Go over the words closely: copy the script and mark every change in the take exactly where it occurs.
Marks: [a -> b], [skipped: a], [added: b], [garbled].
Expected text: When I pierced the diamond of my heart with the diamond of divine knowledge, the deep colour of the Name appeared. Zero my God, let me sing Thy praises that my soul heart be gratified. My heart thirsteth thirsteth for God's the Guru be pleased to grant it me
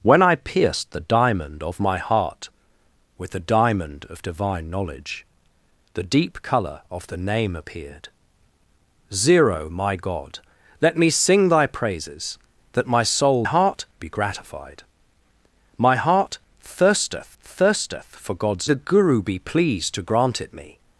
When I pierced the diamond of my heart with the diamond of divine knowledge, the deep colour of the Name appeared. Zero my God, let me sing Thy praises that my soul heart be gratified. My heart thirsteth thirsteth for God's the Guru be pleased to grant it me